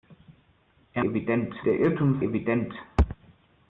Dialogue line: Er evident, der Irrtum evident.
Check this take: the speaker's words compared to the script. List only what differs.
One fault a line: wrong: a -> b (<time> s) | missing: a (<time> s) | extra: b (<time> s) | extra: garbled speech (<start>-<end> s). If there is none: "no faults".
no faults